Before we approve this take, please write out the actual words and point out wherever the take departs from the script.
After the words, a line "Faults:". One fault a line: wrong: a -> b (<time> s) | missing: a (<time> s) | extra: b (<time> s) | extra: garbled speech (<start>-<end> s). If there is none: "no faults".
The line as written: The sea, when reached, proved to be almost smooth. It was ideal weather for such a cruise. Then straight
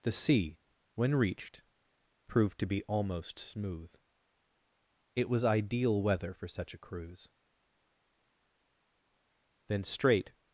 The sea, when reached, proved to be almost smooth. It was ideal weather for such a cruise. Then straight
Faults:
no faults